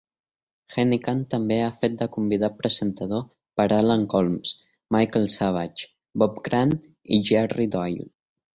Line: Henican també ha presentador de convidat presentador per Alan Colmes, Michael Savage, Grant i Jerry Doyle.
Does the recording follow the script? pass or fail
fail